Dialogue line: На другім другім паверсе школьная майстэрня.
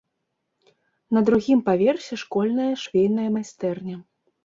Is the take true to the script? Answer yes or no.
no